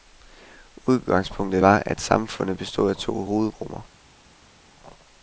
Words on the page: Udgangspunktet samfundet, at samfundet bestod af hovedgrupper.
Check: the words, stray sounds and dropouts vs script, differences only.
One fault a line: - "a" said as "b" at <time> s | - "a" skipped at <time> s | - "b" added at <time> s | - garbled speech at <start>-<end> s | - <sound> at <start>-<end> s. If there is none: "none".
- "samfundet" said as "var" at 1.6 s
- "to" added at 3.0 s